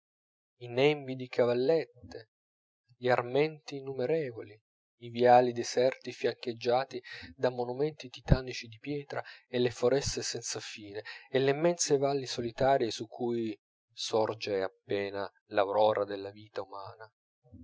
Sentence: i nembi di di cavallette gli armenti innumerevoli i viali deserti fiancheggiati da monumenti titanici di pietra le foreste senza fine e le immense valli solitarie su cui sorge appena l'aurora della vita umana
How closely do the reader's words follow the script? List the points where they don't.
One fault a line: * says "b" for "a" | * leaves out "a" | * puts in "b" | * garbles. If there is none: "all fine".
* leaves out "di"
* puts in "e"